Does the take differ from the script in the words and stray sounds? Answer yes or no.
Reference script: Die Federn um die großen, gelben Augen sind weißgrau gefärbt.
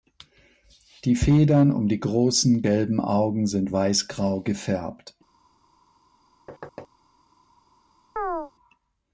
yes